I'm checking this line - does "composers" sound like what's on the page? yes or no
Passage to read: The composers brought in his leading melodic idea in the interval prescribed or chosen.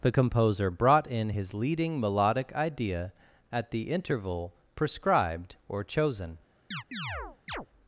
no